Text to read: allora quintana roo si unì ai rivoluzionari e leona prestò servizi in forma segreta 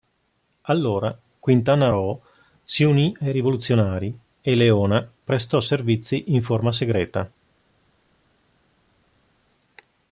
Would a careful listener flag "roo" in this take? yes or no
no